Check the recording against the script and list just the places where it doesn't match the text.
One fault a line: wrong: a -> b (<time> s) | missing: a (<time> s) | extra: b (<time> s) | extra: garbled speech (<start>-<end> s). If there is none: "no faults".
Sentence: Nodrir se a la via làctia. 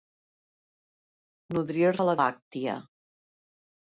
missing: se (1.9 s)
missing: via (2.2 s)